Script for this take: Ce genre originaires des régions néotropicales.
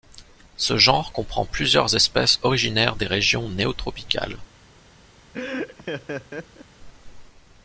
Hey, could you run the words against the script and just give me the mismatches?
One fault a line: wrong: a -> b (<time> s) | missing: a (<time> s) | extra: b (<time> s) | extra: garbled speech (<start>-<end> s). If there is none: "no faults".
extra: comprend plusieurs espèces (1.1 s)